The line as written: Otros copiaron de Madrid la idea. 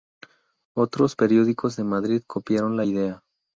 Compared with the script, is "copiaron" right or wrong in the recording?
wrong